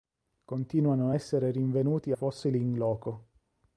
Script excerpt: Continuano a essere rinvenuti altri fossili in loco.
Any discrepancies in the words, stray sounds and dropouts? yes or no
yes